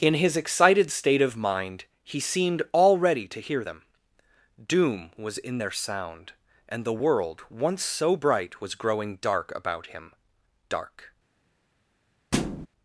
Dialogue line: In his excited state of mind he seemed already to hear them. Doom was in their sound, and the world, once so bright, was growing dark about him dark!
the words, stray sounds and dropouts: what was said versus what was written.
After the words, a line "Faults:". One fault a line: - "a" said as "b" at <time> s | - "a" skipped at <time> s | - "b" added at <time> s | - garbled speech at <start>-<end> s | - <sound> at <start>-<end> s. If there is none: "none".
In his excited state of mind he seemed already to hear them. Doom was in their sound, and the world, once so bright, was growing dark about him dark!
Faults:
- thud at 12.3-12.7 s